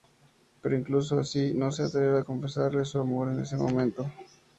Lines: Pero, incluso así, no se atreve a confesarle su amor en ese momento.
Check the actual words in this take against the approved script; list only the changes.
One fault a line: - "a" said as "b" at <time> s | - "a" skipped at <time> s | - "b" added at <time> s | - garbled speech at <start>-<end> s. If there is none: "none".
none